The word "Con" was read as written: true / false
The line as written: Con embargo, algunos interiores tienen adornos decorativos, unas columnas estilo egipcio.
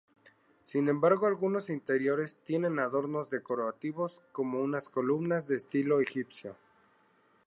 false